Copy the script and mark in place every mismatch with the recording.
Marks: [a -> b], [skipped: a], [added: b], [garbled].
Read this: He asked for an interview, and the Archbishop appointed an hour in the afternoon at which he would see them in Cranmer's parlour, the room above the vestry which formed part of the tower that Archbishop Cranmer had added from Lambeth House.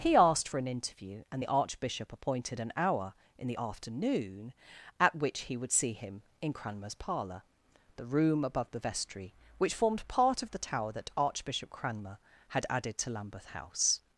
He asked for an interview, and the Archbishop appointed an hour in the afternoon at which he would see [them -> him] in Cranmer's parlour, the room above the vestry which formed part of the tower that Archbishop Cranmer had added [from -> to] Lambeth House.